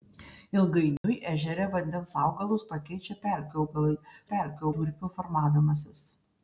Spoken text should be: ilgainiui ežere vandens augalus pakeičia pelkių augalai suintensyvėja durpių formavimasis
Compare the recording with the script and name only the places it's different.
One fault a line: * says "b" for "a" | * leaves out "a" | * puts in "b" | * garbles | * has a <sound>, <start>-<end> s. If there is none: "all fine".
* has a dropout, 1.0-1.0 s
* says "pelkių" for "suintensyvėja"